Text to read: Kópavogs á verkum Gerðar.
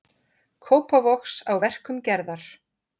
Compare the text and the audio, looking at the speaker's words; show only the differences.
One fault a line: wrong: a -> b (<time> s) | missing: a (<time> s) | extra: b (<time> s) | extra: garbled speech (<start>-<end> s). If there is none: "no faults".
no faults